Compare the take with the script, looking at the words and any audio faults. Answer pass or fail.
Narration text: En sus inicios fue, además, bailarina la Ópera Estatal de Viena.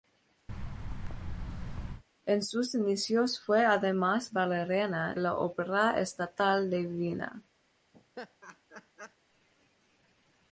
fail